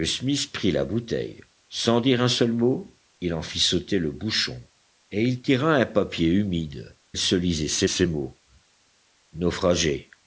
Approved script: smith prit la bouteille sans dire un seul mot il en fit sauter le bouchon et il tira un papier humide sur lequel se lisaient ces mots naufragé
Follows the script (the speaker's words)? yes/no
no